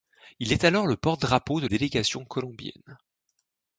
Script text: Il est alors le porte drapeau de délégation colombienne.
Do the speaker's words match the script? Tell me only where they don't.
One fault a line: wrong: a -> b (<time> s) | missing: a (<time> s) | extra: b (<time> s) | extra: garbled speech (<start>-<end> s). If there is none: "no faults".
no faults